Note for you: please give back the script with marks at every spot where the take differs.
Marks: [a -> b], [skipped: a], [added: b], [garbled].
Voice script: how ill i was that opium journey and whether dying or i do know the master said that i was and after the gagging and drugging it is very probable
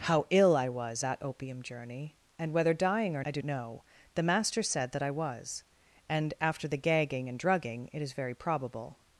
how ill i was that opium journey and whether dying or i do know the master said that i was and after the gagging and drugging it is very probable